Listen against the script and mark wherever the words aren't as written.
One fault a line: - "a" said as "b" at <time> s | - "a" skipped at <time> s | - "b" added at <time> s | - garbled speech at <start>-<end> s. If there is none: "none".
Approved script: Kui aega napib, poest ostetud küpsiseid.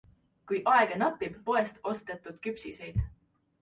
none